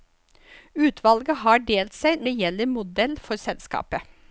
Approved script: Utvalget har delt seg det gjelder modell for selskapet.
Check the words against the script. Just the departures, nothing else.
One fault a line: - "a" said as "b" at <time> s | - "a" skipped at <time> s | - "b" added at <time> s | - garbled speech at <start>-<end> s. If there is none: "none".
none